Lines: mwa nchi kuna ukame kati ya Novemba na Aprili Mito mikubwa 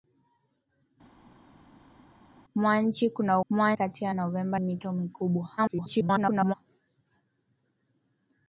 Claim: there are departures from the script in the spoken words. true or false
true